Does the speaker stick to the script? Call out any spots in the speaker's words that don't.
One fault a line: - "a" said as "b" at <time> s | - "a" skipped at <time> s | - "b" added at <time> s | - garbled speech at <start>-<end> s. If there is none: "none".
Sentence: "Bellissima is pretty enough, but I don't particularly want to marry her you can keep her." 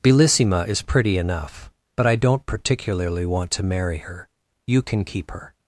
none